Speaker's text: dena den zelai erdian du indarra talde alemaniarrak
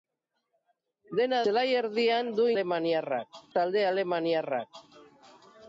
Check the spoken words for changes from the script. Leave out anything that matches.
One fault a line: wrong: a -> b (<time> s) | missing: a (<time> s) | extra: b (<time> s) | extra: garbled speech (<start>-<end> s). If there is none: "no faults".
missing: den (1.4 s)
wrong: indarra -> alemaniarrak (2.5 s)